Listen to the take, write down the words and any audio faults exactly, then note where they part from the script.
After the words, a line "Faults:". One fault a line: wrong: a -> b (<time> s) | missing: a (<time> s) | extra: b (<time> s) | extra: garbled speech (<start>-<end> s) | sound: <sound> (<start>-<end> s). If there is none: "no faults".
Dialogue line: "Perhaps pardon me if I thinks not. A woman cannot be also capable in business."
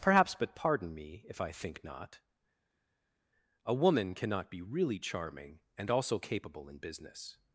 "Perhaps but pardon me if I think not. A woman cannot be really charming and also capable in business."
Faults:
extra: but (0.3 s)
wrong: thinks -> think (1.5 s)
extra: really charming and (4.6 s)